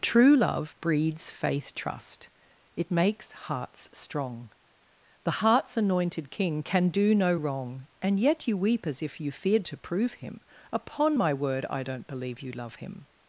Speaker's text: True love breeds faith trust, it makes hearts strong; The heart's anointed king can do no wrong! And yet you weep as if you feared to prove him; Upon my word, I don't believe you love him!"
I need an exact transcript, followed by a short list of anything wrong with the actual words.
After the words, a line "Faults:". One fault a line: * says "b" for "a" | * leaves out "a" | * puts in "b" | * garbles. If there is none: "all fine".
True love breeds faith trust, it makes hearts strong; The heart's anointed king can do no wrong! And yet you weep as if you feared to prove him; Upon my word, I don't believe you love him!"
Faults:
all fine